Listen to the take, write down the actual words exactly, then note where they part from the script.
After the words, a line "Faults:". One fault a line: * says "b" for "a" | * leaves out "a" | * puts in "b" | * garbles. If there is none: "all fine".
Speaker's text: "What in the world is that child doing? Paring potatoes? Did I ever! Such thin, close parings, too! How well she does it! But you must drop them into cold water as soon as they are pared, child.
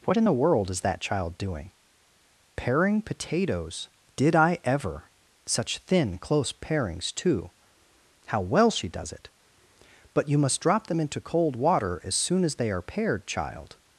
"What in the world is that child doing? Paring potatoes? Did I ever! Such thin, close parings, too! How well she does it! But you must drop them into cold water as soon as they are pared, child.
Faults:
all fine